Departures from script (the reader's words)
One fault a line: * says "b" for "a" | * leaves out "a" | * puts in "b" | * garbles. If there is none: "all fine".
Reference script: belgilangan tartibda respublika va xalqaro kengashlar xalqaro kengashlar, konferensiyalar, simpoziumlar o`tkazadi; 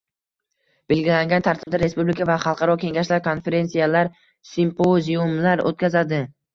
* leaves out "xalqaro kengashlar"